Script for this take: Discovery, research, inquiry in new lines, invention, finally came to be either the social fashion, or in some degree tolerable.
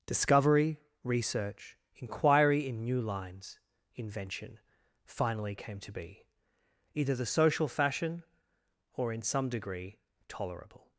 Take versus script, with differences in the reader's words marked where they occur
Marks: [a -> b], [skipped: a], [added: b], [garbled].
Discovery, research, inquiry in new lines, invention, finally came to be either the social fashion, or in some degree tolerable.